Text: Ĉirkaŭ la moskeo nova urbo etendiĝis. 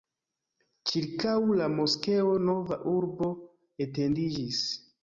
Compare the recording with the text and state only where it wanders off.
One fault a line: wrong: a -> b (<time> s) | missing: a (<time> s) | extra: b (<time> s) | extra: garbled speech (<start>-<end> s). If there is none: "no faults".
no faults